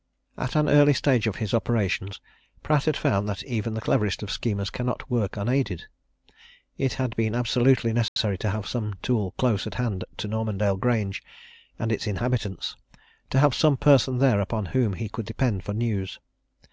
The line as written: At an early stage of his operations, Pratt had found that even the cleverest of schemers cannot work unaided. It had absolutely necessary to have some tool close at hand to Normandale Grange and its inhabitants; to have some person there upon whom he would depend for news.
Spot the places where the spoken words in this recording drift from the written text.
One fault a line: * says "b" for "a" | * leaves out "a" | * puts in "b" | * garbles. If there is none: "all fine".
* puts in "been"
* says "could" for "would"